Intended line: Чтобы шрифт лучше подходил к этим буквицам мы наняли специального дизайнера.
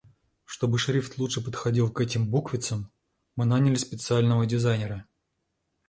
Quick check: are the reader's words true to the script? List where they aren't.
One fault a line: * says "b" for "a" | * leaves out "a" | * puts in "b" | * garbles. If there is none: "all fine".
all fine